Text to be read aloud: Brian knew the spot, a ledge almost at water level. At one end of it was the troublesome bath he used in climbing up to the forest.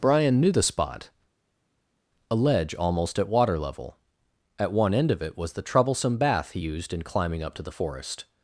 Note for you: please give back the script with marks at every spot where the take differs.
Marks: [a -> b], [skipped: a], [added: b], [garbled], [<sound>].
Brian knew the spot, a ledge almost at water level. At one end of it was the troublesome bath he used in climbing up to the forest.